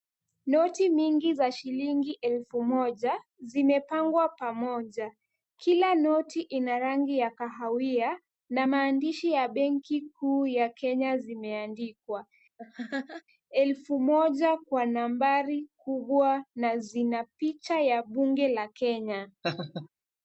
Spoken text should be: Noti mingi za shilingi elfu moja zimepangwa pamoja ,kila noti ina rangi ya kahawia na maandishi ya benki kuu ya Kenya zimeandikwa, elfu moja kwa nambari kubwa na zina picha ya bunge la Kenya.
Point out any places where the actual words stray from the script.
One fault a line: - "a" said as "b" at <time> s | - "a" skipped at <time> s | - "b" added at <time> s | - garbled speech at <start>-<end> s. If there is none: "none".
none